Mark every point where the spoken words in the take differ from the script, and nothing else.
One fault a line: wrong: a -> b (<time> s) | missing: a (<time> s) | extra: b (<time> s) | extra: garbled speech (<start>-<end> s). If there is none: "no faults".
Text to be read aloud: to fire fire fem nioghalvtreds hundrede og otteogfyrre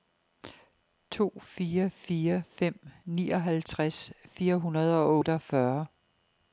extra: fire (4.2 s)